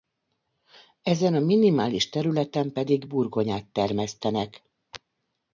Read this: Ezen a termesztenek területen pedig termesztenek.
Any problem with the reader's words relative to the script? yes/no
yes